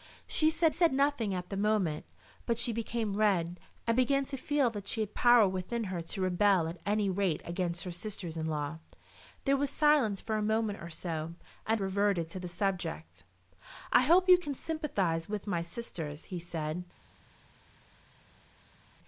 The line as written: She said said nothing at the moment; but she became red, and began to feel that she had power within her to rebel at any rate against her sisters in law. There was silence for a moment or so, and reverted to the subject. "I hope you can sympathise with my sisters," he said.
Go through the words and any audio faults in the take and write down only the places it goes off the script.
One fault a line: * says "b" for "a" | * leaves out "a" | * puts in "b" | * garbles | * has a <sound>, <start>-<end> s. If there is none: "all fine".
all fine